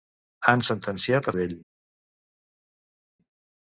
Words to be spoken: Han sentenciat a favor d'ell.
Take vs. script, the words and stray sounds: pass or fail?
fail